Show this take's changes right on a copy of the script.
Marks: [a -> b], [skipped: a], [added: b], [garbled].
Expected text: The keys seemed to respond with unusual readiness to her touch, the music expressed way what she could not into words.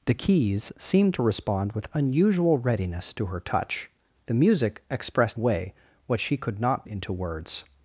The keys seemed to respond with unusual readiness to her touch, the music expressed way what she could not into words.